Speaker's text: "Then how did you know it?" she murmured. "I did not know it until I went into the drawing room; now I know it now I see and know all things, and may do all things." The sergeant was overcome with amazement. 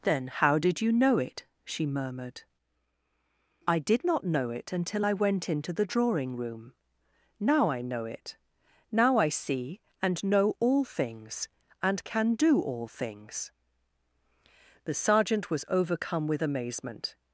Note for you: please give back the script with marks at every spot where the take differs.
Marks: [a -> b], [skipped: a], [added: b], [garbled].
"Then how did you know it?" she murmured. "I did not know it until I went into the drawing room; now I know it now I see and know all things, and [may -> can] do all things." The sergeant was overcome with amazement.